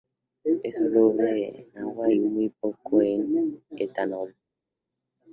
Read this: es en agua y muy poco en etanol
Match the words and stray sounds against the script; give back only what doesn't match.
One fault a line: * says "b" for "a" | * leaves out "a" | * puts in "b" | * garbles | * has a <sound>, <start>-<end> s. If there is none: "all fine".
* puts in "soluble"